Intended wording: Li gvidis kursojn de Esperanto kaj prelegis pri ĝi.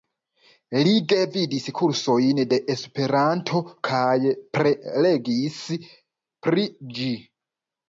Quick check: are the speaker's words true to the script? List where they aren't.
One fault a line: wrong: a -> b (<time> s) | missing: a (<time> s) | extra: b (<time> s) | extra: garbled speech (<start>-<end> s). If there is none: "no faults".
no faults